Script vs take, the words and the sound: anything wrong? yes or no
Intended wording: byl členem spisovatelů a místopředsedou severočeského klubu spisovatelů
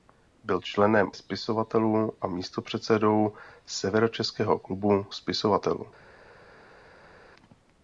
no